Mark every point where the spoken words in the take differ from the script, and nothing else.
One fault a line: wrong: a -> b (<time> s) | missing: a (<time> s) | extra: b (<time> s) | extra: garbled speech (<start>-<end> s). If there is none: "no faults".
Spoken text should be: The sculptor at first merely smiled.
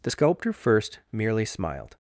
missing: at (0.5 s)